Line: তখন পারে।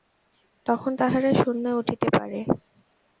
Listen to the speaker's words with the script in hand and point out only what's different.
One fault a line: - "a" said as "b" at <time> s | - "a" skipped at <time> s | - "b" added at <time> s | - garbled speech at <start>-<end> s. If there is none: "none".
- "তাহারা শূন্যে উঠিতে" added at 1.0 s